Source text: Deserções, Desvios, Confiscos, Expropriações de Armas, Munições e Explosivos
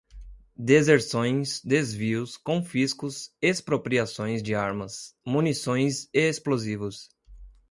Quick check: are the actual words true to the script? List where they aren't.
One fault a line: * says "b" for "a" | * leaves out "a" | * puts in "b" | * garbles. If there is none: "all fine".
all fine